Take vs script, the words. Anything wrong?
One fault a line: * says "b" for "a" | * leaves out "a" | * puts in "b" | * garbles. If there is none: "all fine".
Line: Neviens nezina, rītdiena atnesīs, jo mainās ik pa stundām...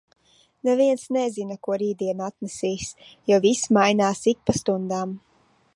* puts in "ko"
* puts in "viss"